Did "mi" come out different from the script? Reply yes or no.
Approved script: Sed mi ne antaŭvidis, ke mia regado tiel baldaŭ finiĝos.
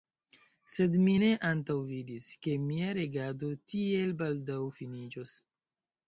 no